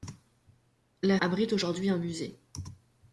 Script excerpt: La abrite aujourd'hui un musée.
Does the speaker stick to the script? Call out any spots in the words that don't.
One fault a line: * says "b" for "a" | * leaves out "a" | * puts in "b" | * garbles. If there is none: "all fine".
all fine